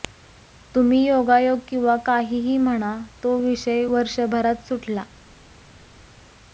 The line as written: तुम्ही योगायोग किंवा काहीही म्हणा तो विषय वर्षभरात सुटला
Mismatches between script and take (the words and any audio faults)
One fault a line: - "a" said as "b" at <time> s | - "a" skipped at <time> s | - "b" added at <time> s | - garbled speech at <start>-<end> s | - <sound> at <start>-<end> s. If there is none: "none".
none